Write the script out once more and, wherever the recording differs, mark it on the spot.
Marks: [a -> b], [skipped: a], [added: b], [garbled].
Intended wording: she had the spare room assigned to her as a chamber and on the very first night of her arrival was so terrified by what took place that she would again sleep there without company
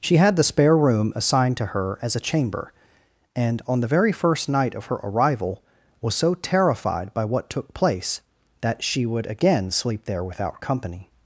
she had the spare room assigned to her as a chamber and on the very first night of her arrival was so terrified by what took place that she would again sleep there without company